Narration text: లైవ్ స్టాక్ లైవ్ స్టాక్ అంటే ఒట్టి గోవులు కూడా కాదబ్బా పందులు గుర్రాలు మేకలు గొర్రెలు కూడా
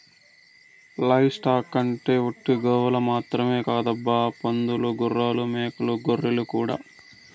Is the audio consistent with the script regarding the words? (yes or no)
no